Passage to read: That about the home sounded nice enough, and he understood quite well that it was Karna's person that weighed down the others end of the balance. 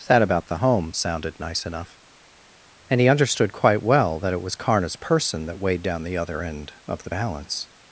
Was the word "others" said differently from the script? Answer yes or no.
yes